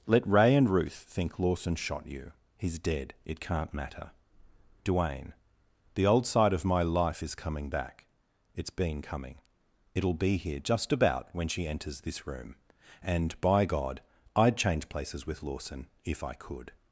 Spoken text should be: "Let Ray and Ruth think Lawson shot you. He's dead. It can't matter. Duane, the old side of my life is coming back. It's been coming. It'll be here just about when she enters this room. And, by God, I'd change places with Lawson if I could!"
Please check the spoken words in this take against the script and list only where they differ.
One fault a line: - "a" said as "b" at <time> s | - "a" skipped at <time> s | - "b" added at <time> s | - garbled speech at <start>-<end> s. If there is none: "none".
none